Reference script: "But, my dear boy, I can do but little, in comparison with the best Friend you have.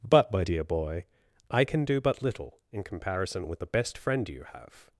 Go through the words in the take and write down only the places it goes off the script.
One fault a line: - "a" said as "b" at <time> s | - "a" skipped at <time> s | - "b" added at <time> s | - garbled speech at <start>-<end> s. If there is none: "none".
none